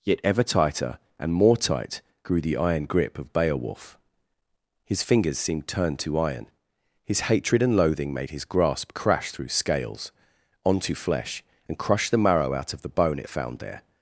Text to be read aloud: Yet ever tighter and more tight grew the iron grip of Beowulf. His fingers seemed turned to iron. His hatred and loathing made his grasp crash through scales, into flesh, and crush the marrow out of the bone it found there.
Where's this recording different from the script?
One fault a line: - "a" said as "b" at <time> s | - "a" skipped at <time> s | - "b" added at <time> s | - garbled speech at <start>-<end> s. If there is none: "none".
- "into" said as "onto" at 10.6 s